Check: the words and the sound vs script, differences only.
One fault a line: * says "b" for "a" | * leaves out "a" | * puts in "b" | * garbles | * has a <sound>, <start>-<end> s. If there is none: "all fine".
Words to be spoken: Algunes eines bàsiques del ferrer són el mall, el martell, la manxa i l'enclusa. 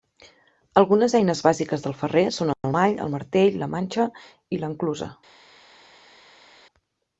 all fine